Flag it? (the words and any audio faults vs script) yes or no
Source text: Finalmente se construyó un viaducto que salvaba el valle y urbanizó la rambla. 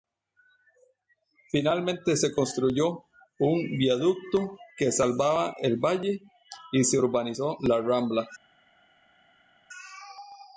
yes